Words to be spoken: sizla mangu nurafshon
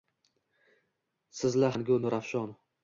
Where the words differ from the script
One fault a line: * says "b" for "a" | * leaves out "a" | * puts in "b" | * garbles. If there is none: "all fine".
all fine